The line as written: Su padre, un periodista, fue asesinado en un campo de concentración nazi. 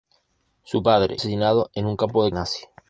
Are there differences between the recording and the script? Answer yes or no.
yes